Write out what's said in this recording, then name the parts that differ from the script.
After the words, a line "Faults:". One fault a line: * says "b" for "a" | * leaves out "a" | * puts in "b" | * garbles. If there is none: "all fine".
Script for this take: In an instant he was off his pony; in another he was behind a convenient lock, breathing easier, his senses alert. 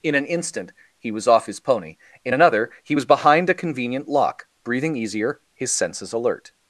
In an instant he was off his pony; in another he was behind a convenient lock, breathing easier, his senses alert.
Faults:
all fine